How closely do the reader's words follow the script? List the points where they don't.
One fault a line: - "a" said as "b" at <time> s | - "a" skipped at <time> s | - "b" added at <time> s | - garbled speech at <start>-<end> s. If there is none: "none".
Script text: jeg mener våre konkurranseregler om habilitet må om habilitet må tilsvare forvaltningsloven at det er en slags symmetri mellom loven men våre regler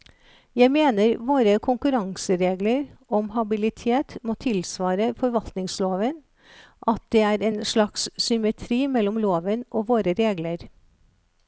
- "om habilitet må" skipped at 4.3 s
- "men" said as "og" at 9.7 s